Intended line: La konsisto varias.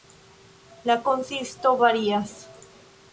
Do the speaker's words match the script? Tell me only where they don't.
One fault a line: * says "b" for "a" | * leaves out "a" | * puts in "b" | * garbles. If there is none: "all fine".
all fine